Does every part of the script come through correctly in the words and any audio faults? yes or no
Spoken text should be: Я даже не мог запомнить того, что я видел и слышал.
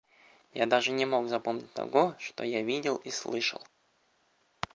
yes